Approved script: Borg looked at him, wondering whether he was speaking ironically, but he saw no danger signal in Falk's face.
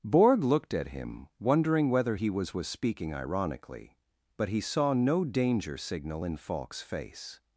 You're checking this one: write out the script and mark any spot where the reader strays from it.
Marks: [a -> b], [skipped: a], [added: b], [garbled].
Borg looked at him, wondering whether he was [added: was] speaking ironically, but he saw no danger signal in Falk's face.